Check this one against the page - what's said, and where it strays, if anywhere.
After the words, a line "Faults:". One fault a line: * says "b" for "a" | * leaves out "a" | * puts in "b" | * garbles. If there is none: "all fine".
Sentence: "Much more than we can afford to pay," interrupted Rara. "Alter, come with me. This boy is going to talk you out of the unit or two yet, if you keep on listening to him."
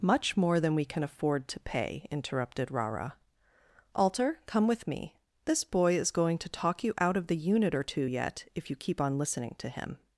"Much more than we can afford to pay," interrupted Rara. "Alter, come with me. This boy is going to talk you out of the unit or two yet, if you keep on listening to him."
Faults:
all fine